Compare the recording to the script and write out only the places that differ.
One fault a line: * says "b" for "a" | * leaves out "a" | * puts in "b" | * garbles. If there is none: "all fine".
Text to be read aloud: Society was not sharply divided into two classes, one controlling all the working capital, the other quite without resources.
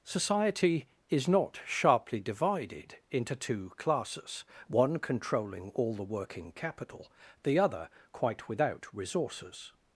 * says "is" for "was"